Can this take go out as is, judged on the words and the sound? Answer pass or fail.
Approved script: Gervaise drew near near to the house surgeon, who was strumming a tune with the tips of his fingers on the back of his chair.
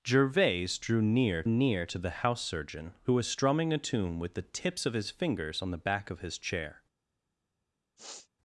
fail